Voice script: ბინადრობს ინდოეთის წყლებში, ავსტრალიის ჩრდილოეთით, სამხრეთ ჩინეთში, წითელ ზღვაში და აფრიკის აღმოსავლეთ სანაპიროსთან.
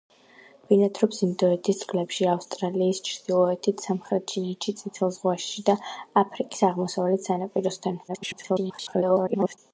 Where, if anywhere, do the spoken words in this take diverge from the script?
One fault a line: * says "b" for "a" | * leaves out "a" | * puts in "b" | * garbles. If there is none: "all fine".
* garbles